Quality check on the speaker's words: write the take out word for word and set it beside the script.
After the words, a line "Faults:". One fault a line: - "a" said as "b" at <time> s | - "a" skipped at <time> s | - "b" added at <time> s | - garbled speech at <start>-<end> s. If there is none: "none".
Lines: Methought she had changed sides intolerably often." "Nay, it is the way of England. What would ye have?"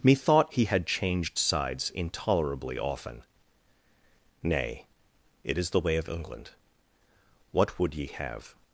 Methought he had changed sides intolerably often." "Nay, it is the way of England. What would ye have?"
Faults:
- "she" said as "he" at 0.5 s